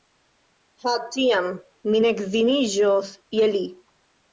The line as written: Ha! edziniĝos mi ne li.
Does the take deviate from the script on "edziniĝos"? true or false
true